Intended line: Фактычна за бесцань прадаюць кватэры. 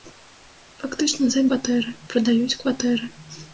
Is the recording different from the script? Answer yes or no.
yes